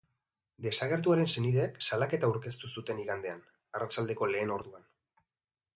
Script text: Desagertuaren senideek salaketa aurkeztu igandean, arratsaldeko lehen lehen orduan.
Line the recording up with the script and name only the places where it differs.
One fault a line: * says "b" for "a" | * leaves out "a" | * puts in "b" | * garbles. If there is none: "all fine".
* puts in "zuten"
* leaves out "lehen"